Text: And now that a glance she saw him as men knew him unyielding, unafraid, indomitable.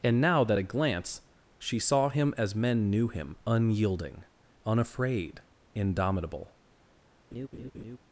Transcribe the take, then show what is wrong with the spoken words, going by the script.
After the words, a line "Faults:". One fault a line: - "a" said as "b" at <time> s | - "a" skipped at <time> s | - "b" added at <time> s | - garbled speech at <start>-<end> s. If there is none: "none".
And now that a glance she saw him as men knew him unyielding, unafraid, indomitable.
Faults:
none